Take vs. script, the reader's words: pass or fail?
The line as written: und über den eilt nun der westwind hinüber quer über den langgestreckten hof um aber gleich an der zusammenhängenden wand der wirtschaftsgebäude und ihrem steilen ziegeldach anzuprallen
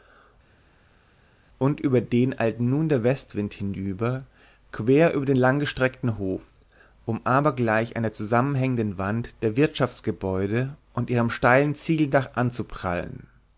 pass